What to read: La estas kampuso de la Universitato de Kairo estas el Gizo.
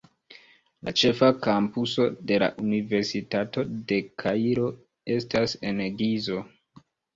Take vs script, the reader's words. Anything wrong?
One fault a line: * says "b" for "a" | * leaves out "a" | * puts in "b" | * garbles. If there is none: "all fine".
* says "ĉefa" for "estas"
* says "en" for "el"